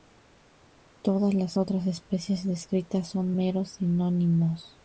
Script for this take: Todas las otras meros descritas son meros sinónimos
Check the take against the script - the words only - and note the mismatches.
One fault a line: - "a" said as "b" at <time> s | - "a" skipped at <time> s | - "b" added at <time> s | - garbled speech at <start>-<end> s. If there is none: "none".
- "meros" said as "especies" at 1.9 s